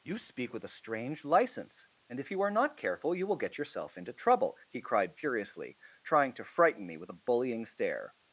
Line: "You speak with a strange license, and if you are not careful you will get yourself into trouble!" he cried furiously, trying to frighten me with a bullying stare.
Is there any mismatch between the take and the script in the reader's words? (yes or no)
no